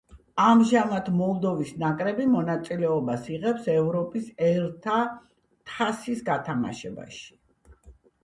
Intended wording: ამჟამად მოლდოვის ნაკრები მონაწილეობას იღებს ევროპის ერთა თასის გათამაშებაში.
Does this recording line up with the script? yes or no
yes